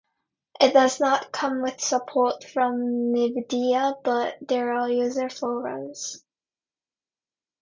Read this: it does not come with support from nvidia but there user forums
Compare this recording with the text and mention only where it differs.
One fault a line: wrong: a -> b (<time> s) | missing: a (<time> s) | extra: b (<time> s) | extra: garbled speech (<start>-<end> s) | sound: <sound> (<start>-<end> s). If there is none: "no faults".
extra: are (4.7 s)